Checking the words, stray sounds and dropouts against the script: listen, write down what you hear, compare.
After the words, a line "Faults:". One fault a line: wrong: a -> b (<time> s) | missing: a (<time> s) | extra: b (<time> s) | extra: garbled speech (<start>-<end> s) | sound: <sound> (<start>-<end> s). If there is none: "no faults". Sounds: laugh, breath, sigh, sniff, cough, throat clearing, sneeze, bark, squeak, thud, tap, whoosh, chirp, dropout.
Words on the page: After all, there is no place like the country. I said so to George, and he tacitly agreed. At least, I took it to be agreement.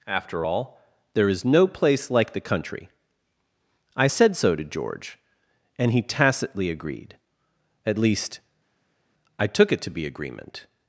After all, there is no place like the country. I said so to George, and he tacitly agreed. At least, I took it to be agreement.
Faults:
no faults